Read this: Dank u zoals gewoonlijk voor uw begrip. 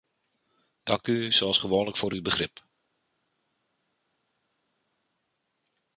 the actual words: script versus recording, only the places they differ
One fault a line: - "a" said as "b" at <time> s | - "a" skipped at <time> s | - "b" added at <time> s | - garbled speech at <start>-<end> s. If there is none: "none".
none